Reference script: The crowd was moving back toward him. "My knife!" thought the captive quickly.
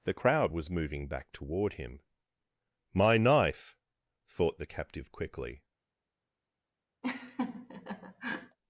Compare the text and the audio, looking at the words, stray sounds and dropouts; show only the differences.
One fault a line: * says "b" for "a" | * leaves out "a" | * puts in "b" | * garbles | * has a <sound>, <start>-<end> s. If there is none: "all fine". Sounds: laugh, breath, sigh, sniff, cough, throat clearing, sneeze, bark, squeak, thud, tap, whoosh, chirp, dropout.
* has a laugh, 7.0-8.6 s